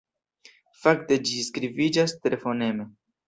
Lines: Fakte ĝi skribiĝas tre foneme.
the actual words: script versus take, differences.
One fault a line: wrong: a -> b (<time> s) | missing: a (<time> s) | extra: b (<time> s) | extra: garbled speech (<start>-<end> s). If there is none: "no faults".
no faults